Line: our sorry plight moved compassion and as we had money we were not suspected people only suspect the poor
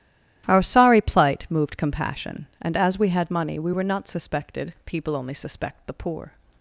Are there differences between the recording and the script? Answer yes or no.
no